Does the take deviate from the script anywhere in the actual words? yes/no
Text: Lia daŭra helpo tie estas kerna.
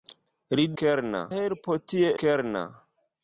yes